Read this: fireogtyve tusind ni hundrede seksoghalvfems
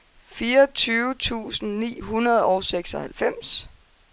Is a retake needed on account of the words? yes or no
yes